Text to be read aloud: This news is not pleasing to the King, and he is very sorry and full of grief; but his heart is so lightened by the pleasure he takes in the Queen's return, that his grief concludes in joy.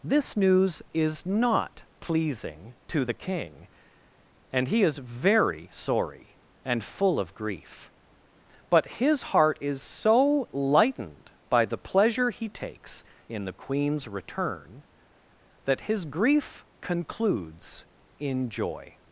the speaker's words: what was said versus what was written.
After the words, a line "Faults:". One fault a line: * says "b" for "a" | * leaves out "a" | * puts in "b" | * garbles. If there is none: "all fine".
This news is not pleasing to the King, and he is very sorry and full of grief; but his heart is so lightened by the pleasure he takes in the Queen's return, that his grief concludes in joy.
Faults:
all fine